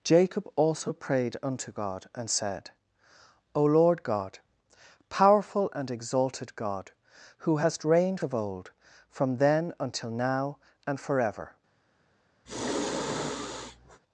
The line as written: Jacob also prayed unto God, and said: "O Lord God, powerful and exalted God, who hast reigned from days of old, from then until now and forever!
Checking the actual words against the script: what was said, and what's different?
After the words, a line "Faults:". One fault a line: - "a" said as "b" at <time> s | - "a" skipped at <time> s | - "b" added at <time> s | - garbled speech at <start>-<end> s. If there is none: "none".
Jacob also prayed unto God, and said: "O Lord God, powerful and exalted God, who hast reigned of old, from then until now and forever!
Faults:
- "from days" skipped at 8.2 s